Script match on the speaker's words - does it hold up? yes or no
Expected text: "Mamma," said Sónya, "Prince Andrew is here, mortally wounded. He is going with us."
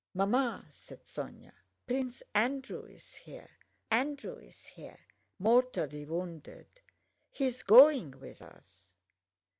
no